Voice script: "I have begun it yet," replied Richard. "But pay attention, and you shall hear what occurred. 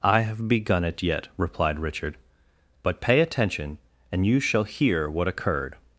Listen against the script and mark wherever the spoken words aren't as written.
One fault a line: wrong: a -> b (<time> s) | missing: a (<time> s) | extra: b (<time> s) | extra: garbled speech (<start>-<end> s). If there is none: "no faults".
no faults